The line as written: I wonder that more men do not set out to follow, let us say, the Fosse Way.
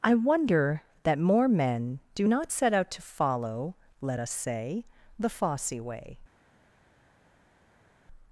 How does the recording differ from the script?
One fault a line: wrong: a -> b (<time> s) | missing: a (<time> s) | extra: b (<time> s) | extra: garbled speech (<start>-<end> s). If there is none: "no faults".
no faults